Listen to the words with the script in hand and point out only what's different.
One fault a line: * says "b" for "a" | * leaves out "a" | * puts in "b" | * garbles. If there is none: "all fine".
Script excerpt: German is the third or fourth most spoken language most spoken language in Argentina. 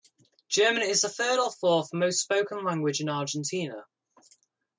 * leaves out "most spoken language"